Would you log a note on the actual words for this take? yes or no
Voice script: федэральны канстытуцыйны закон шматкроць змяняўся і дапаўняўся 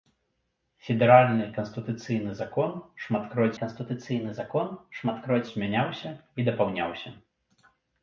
yes